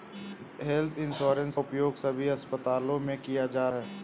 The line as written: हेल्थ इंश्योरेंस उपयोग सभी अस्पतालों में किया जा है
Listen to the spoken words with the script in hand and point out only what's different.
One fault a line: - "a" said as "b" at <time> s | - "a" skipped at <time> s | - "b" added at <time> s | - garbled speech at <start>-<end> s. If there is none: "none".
none